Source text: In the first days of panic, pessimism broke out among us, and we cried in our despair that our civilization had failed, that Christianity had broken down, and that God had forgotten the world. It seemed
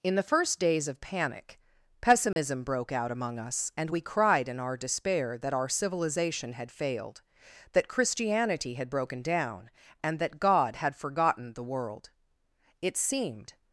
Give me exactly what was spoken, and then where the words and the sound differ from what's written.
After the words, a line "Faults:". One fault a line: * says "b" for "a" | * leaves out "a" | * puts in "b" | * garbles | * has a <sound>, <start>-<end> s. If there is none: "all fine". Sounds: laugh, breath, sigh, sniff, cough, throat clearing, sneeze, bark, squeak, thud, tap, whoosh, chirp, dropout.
In the first days of panic, pessimism broke out among us, and we cried in our despair that our civilization had failed, that Christianity had broken down, and that God had forgotten the world. It seemed
Faults:
* has a dropout, 2.3-2.4 s